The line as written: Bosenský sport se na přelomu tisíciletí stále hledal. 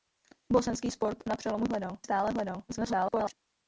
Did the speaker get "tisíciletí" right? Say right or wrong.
wrong